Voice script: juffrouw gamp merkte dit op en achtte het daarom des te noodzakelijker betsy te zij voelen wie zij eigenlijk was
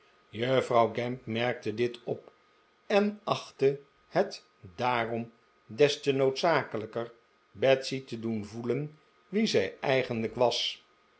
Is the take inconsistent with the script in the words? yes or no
yes